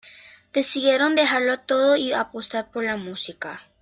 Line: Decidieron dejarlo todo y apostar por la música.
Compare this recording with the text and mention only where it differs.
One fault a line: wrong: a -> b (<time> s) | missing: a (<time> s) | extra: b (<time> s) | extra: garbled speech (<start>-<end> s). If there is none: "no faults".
no faults